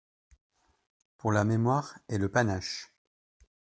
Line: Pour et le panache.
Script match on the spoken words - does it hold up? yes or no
no